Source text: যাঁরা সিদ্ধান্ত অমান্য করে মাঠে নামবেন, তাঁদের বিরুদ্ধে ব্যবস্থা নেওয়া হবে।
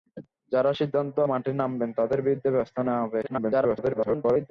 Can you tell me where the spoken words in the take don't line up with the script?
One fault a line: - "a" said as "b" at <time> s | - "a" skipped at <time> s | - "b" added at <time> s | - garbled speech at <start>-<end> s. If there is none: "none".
- "অমান্য করে" skipped at 1.2 s
- garbled speech at 3.2-4.5 s